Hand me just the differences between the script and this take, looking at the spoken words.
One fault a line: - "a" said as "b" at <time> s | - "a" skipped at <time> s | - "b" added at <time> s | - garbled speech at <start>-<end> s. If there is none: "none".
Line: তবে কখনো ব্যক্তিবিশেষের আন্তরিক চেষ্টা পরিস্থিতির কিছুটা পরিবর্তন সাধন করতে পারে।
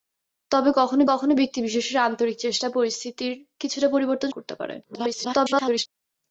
- "কখনো" added at 1.1 s
- "সাধন" skipped at 4.3 s
- garbled speech at 4.8-5.9 s